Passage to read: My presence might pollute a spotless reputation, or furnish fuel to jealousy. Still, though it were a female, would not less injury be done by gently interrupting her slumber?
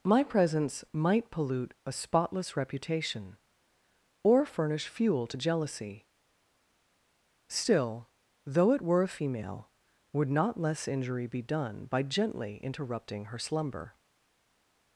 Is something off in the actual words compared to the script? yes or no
no